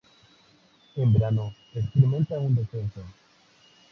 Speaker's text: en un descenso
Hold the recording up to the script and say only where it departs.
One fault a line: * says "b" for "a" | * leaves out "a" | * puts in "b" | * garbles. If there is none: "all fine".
* puts in "verano experimenta"